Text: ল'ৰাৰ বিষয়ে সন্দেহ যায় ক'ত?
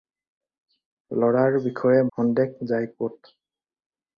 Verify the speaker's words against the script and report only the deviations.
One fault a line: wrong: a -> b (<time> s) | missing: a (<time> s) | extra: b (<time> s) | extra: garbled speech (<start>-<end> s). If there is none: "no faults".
no faults